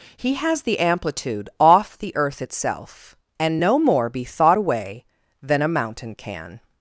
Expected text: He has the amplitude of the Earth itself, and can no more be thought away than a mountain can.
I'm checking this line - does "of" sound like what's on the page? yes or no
no